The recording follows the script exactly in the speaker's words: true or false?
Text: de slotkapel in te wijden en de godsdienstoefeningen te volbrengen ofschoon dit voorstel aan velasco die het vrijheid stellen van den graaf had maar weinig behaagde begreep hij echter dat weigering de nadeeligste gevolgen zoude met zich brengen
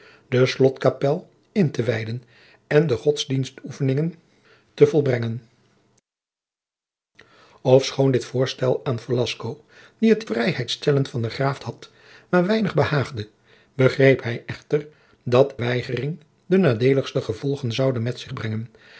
true